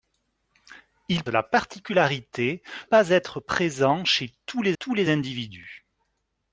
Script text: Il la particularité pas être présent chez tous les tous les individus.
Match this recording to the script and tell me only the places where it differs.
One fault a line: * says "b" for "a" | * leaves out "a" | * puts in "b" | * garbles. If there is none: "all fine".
all fine